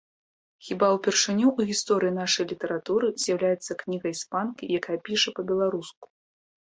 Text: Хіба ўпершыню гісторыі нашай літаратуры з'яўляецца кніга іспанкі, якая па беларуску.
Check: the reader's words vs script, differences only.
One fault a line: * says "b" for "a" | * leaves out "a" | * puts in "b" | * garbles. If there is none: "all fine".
* puts in "ў"
* puts in "піша"